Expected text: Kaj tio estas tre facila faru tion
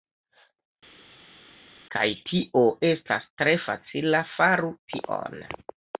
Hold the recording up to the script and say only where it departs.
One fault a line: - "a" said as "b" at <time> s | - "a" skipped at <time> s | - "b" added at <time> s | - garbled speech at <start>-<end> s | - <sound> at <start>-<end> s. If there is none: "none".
none